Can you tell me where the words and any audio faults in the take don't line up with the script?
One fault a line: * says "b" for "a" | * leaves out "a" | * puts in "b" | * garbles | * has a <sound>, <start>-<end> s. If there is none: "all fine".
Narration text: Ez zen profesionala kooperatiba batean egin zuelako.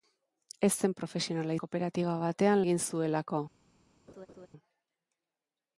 * has a laugh, 4.1-4.5 s